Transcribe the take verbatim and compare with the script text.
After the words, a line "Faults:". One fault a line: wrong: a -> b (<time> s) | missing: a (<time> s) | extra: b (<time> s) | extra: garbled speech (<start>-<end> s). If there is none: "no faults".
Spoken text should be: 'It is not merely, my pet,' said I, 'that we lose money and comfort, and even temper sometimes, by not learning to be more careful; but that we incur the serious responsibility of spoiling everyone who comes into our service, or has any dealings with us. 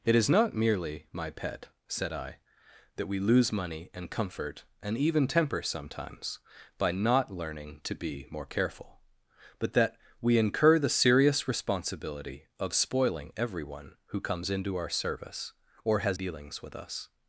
'It is not merely, my pet,' said I, 'that we lose money and comfort, and even temper sometimes, by not learning to be more careful; but that we incur the serious responsibility of spoiling everyone who comes into our service, or has dealings with us.
Faults:
missing: any (16.2 s)